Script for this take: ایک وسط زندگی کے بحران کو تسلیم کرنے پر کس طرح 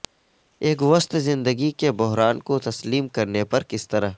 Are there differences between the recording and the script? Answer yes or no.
no